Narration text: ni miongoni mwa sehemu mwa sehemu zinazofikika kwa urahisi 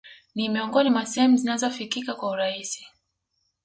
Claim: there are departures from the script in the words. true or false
true